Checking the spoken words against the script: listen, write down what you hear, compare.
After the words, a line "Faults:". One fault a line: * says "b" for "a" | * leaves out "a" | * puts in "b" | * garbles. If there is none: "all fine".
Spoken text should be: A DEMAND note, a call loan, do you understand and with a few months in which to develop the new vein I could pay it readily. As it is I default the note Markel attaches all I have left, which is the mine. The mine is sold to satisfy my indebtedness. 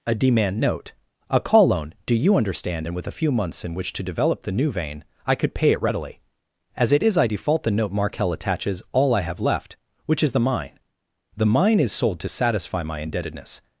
A DEMAND note, a call loan, do you understand and with a few months in which to develop the new vein I could pay it readily. As it is I default the note Markel attaches all I have left, which is the mine. The mine is sold to satisfy my indebtedness.
Faults:
all fine